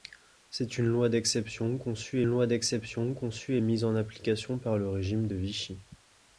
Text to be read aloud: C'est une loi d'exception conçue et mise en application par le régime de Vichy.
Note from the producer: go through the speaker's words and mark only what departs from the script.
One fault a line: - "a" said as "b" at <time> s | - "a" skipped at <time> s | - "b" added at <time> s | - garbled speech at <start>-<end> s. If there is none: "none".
- "loi d'exception conçue" added at 2.3 s